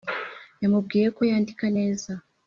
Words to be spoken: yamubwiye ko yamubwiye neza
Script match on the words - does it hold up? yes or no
no